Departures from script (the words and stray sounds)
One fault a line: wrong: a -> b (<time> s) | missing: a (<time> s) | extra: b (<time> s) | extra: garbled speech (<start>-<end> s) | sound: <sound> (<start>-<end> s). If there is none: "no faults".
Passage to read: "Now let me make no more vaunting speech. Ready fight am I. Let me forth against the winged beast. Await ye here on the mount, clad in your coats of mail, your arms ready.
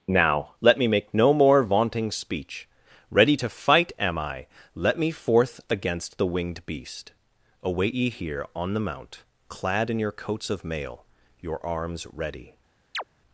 extra: to (3.3 s)
sound: chirp (12.9-13.0 s)